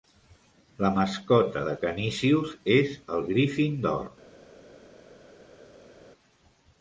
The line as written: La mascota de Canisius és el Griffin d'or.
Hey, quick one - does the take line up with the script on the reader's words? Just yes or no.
yes